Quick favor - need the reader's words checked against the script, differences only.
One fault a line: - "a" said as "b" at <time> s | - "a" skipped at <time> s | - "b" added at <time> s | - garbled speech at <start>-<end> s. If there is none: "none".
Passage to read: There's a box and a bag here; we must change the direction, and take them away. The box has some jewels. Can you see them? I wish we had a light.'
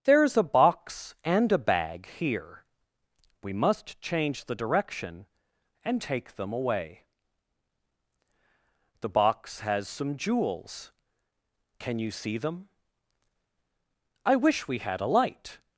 none